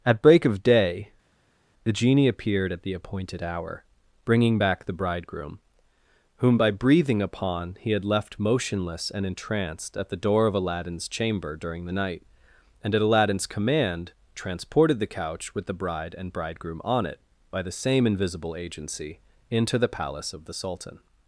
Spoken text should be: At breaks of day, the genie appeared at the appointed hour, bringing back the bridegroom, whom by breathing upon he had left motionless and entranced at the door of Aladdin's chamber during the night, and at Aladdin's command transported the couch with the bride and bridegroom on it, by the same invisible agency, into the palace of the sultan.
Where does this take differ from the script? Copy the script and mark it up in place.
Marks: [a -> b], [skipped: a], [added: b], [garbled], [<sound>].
At [breaks -> break] of day, the genie appeared at the appointed hour, bringing back the bridegroom, whom by breathing upon he had left motionless and entranced at the door of Aladdin's chamber during the night, and at Aladdin's command transported the couch with the bride and bridegroom on it, by the same invisible agency, into the palace of the sultan.